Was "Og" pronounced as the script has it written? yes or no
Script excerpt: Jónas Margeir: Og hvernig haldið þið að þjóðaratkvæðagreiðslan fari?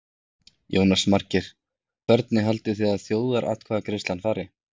no